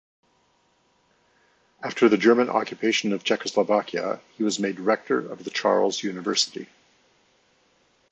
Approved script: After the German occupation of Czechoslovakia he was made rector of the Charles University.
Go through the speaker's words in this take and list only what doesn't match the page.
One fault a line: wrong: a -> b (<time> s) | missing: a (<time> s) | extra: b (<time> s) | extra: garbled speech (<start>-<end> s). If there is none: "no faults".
no faults